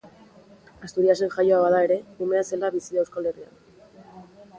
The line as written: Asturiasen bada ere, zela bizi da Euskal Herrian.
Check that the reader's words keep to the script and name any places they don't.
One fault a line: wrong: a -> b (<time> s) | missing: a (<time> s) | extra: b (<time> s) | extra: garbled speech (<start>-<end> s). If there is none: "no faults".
extra: jaioa (1.4 s)
extra: umea (2.3 s)